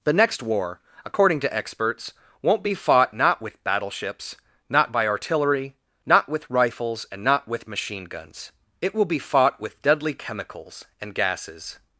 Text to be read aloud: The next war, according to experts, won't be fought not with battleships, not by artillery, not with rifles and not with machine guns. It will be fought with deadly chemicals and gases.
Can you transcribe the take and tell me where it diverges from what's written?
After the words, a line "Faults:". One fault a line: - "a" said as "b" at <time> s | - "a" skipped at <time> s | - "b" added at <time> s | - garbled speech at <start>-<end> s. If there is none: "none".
The next war, according to experts, won't be fought not with battleships, not by artillery, not with rifles and not with machine guns. It will be fought with deadly chemicals and gases.
Faults:
none